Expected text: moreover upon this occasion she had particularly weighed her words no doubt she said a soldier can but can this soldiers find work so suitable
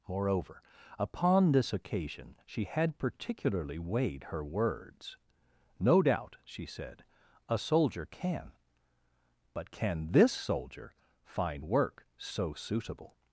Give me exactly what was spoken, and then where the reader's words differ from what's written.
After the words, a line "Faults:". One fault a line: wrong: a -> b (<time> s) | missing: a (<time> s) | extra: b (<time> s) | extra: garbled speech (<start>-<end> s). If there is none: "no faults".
moreover upon this occasion she had particularly weighed her words no doubt she said a soldier can but can this soldier find work so suitable
Faults:
wrong: soldiers -> soldier (10.3 s)